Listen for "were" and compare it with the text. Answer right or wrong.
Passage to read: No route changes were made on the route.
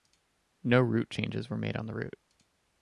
right